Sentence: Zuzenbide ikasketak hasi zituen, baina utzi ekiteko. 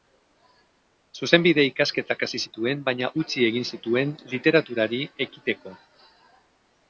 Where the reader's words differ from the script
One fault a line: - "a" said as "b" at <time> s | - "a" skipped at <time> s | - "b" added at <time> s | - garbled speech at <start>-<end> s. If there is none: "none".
- "egin zituen literaturari" added at 3.5 s